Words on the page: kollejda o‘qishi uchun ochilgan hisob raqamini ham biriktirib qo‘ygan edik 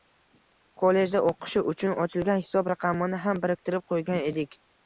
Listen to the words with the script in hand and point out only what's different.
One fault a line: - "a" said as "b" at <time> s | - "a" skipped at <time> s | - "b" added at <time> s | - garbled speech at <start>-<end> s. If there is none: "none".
none